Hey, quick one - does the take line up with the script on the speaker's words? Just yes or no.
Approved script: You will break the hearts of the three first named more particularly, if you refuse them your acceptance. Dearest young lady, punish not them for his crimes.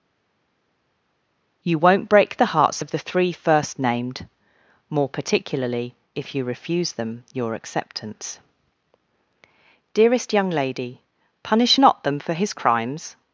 no